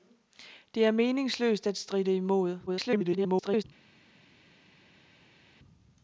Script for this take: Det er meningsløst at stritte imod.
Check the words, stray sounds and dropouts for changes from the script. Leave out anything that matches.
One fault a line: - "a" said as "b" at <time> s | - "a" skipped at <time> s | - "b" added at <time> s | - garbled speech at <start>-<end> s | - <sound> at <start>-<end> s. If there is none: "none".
- garbled speech at 2.7-3.6 s